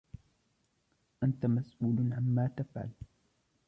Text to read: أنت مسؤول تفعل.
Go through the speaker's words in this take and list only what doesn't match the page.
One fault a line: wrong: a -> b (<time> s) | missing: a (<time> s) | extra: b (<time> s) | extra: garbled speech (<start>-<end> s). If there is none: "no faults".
extra: عمّا (2.1 s)